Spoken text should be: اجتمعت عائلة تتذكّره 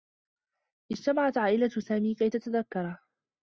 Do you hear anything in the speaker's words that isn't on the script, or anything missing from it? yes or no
yes